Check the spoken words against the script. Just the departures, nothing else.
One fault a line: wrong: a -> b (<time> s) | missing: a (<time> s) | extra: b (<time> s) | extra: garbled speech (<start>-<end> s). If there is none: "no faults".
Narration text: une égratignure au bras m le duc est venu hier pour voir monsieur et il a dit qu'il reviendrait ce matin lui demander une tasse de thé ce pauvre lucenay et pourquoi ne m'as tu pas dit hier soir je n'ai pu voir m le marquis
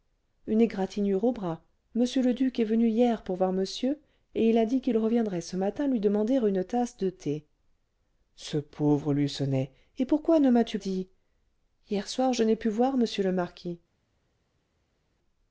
missing: pas (10.8 s)